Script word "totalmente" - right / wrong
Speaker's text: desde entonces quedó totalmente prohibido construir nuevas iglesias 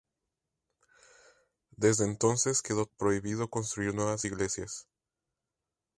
wrong